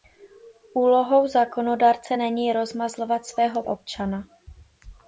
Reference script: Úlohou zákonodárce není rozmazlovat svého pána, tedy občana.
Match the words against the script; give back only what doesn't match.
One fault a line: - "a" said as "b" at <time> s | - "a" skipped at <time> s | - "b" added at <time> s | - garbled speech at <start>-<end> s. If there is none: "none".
- "pána tedy" skipped at 3.6 s